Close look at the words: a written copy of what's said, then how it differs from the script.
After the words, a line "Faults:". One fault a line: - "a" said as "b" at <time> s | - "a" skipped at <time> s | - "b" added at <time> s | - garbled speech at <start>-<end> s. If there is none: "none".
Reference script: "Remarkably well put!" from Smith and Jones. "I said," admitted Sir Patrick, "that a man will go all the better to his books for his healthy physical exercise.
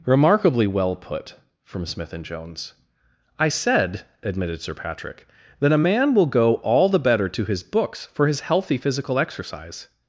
"Remarkably well put!" from Smith and Jones. "I said," admitted Sir Patrick, "that a man will go all the better to his books for his healthy physical exercise.
Faults:
none